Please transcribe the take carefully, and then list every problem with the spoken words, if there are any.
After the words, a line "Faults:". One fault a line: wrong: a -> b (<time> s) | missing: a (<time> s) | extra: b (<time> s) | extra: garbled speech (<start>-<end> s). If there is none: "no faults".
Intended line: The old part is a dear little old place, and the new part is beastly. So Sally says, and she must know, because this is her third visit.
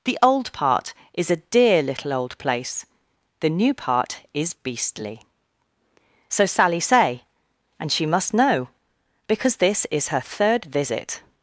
The old part is a dear little old place, the new part is beastly. So Sally say, and she must know, because this is her third visit.
Faults:
missing: and (2.9 s)
wrong: says -> say (6.8 s)